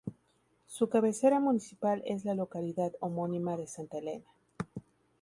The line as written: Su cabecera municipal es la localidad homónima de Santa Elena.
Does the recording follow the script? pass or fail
pass